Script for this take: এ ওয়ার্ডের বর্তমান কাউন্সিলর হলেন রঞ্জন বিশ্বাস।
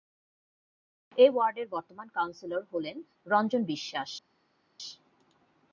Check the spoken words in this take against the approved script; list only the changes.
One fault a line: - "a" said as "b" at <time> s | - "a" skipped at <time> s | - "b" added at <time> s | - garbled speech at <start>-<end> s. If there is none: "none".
none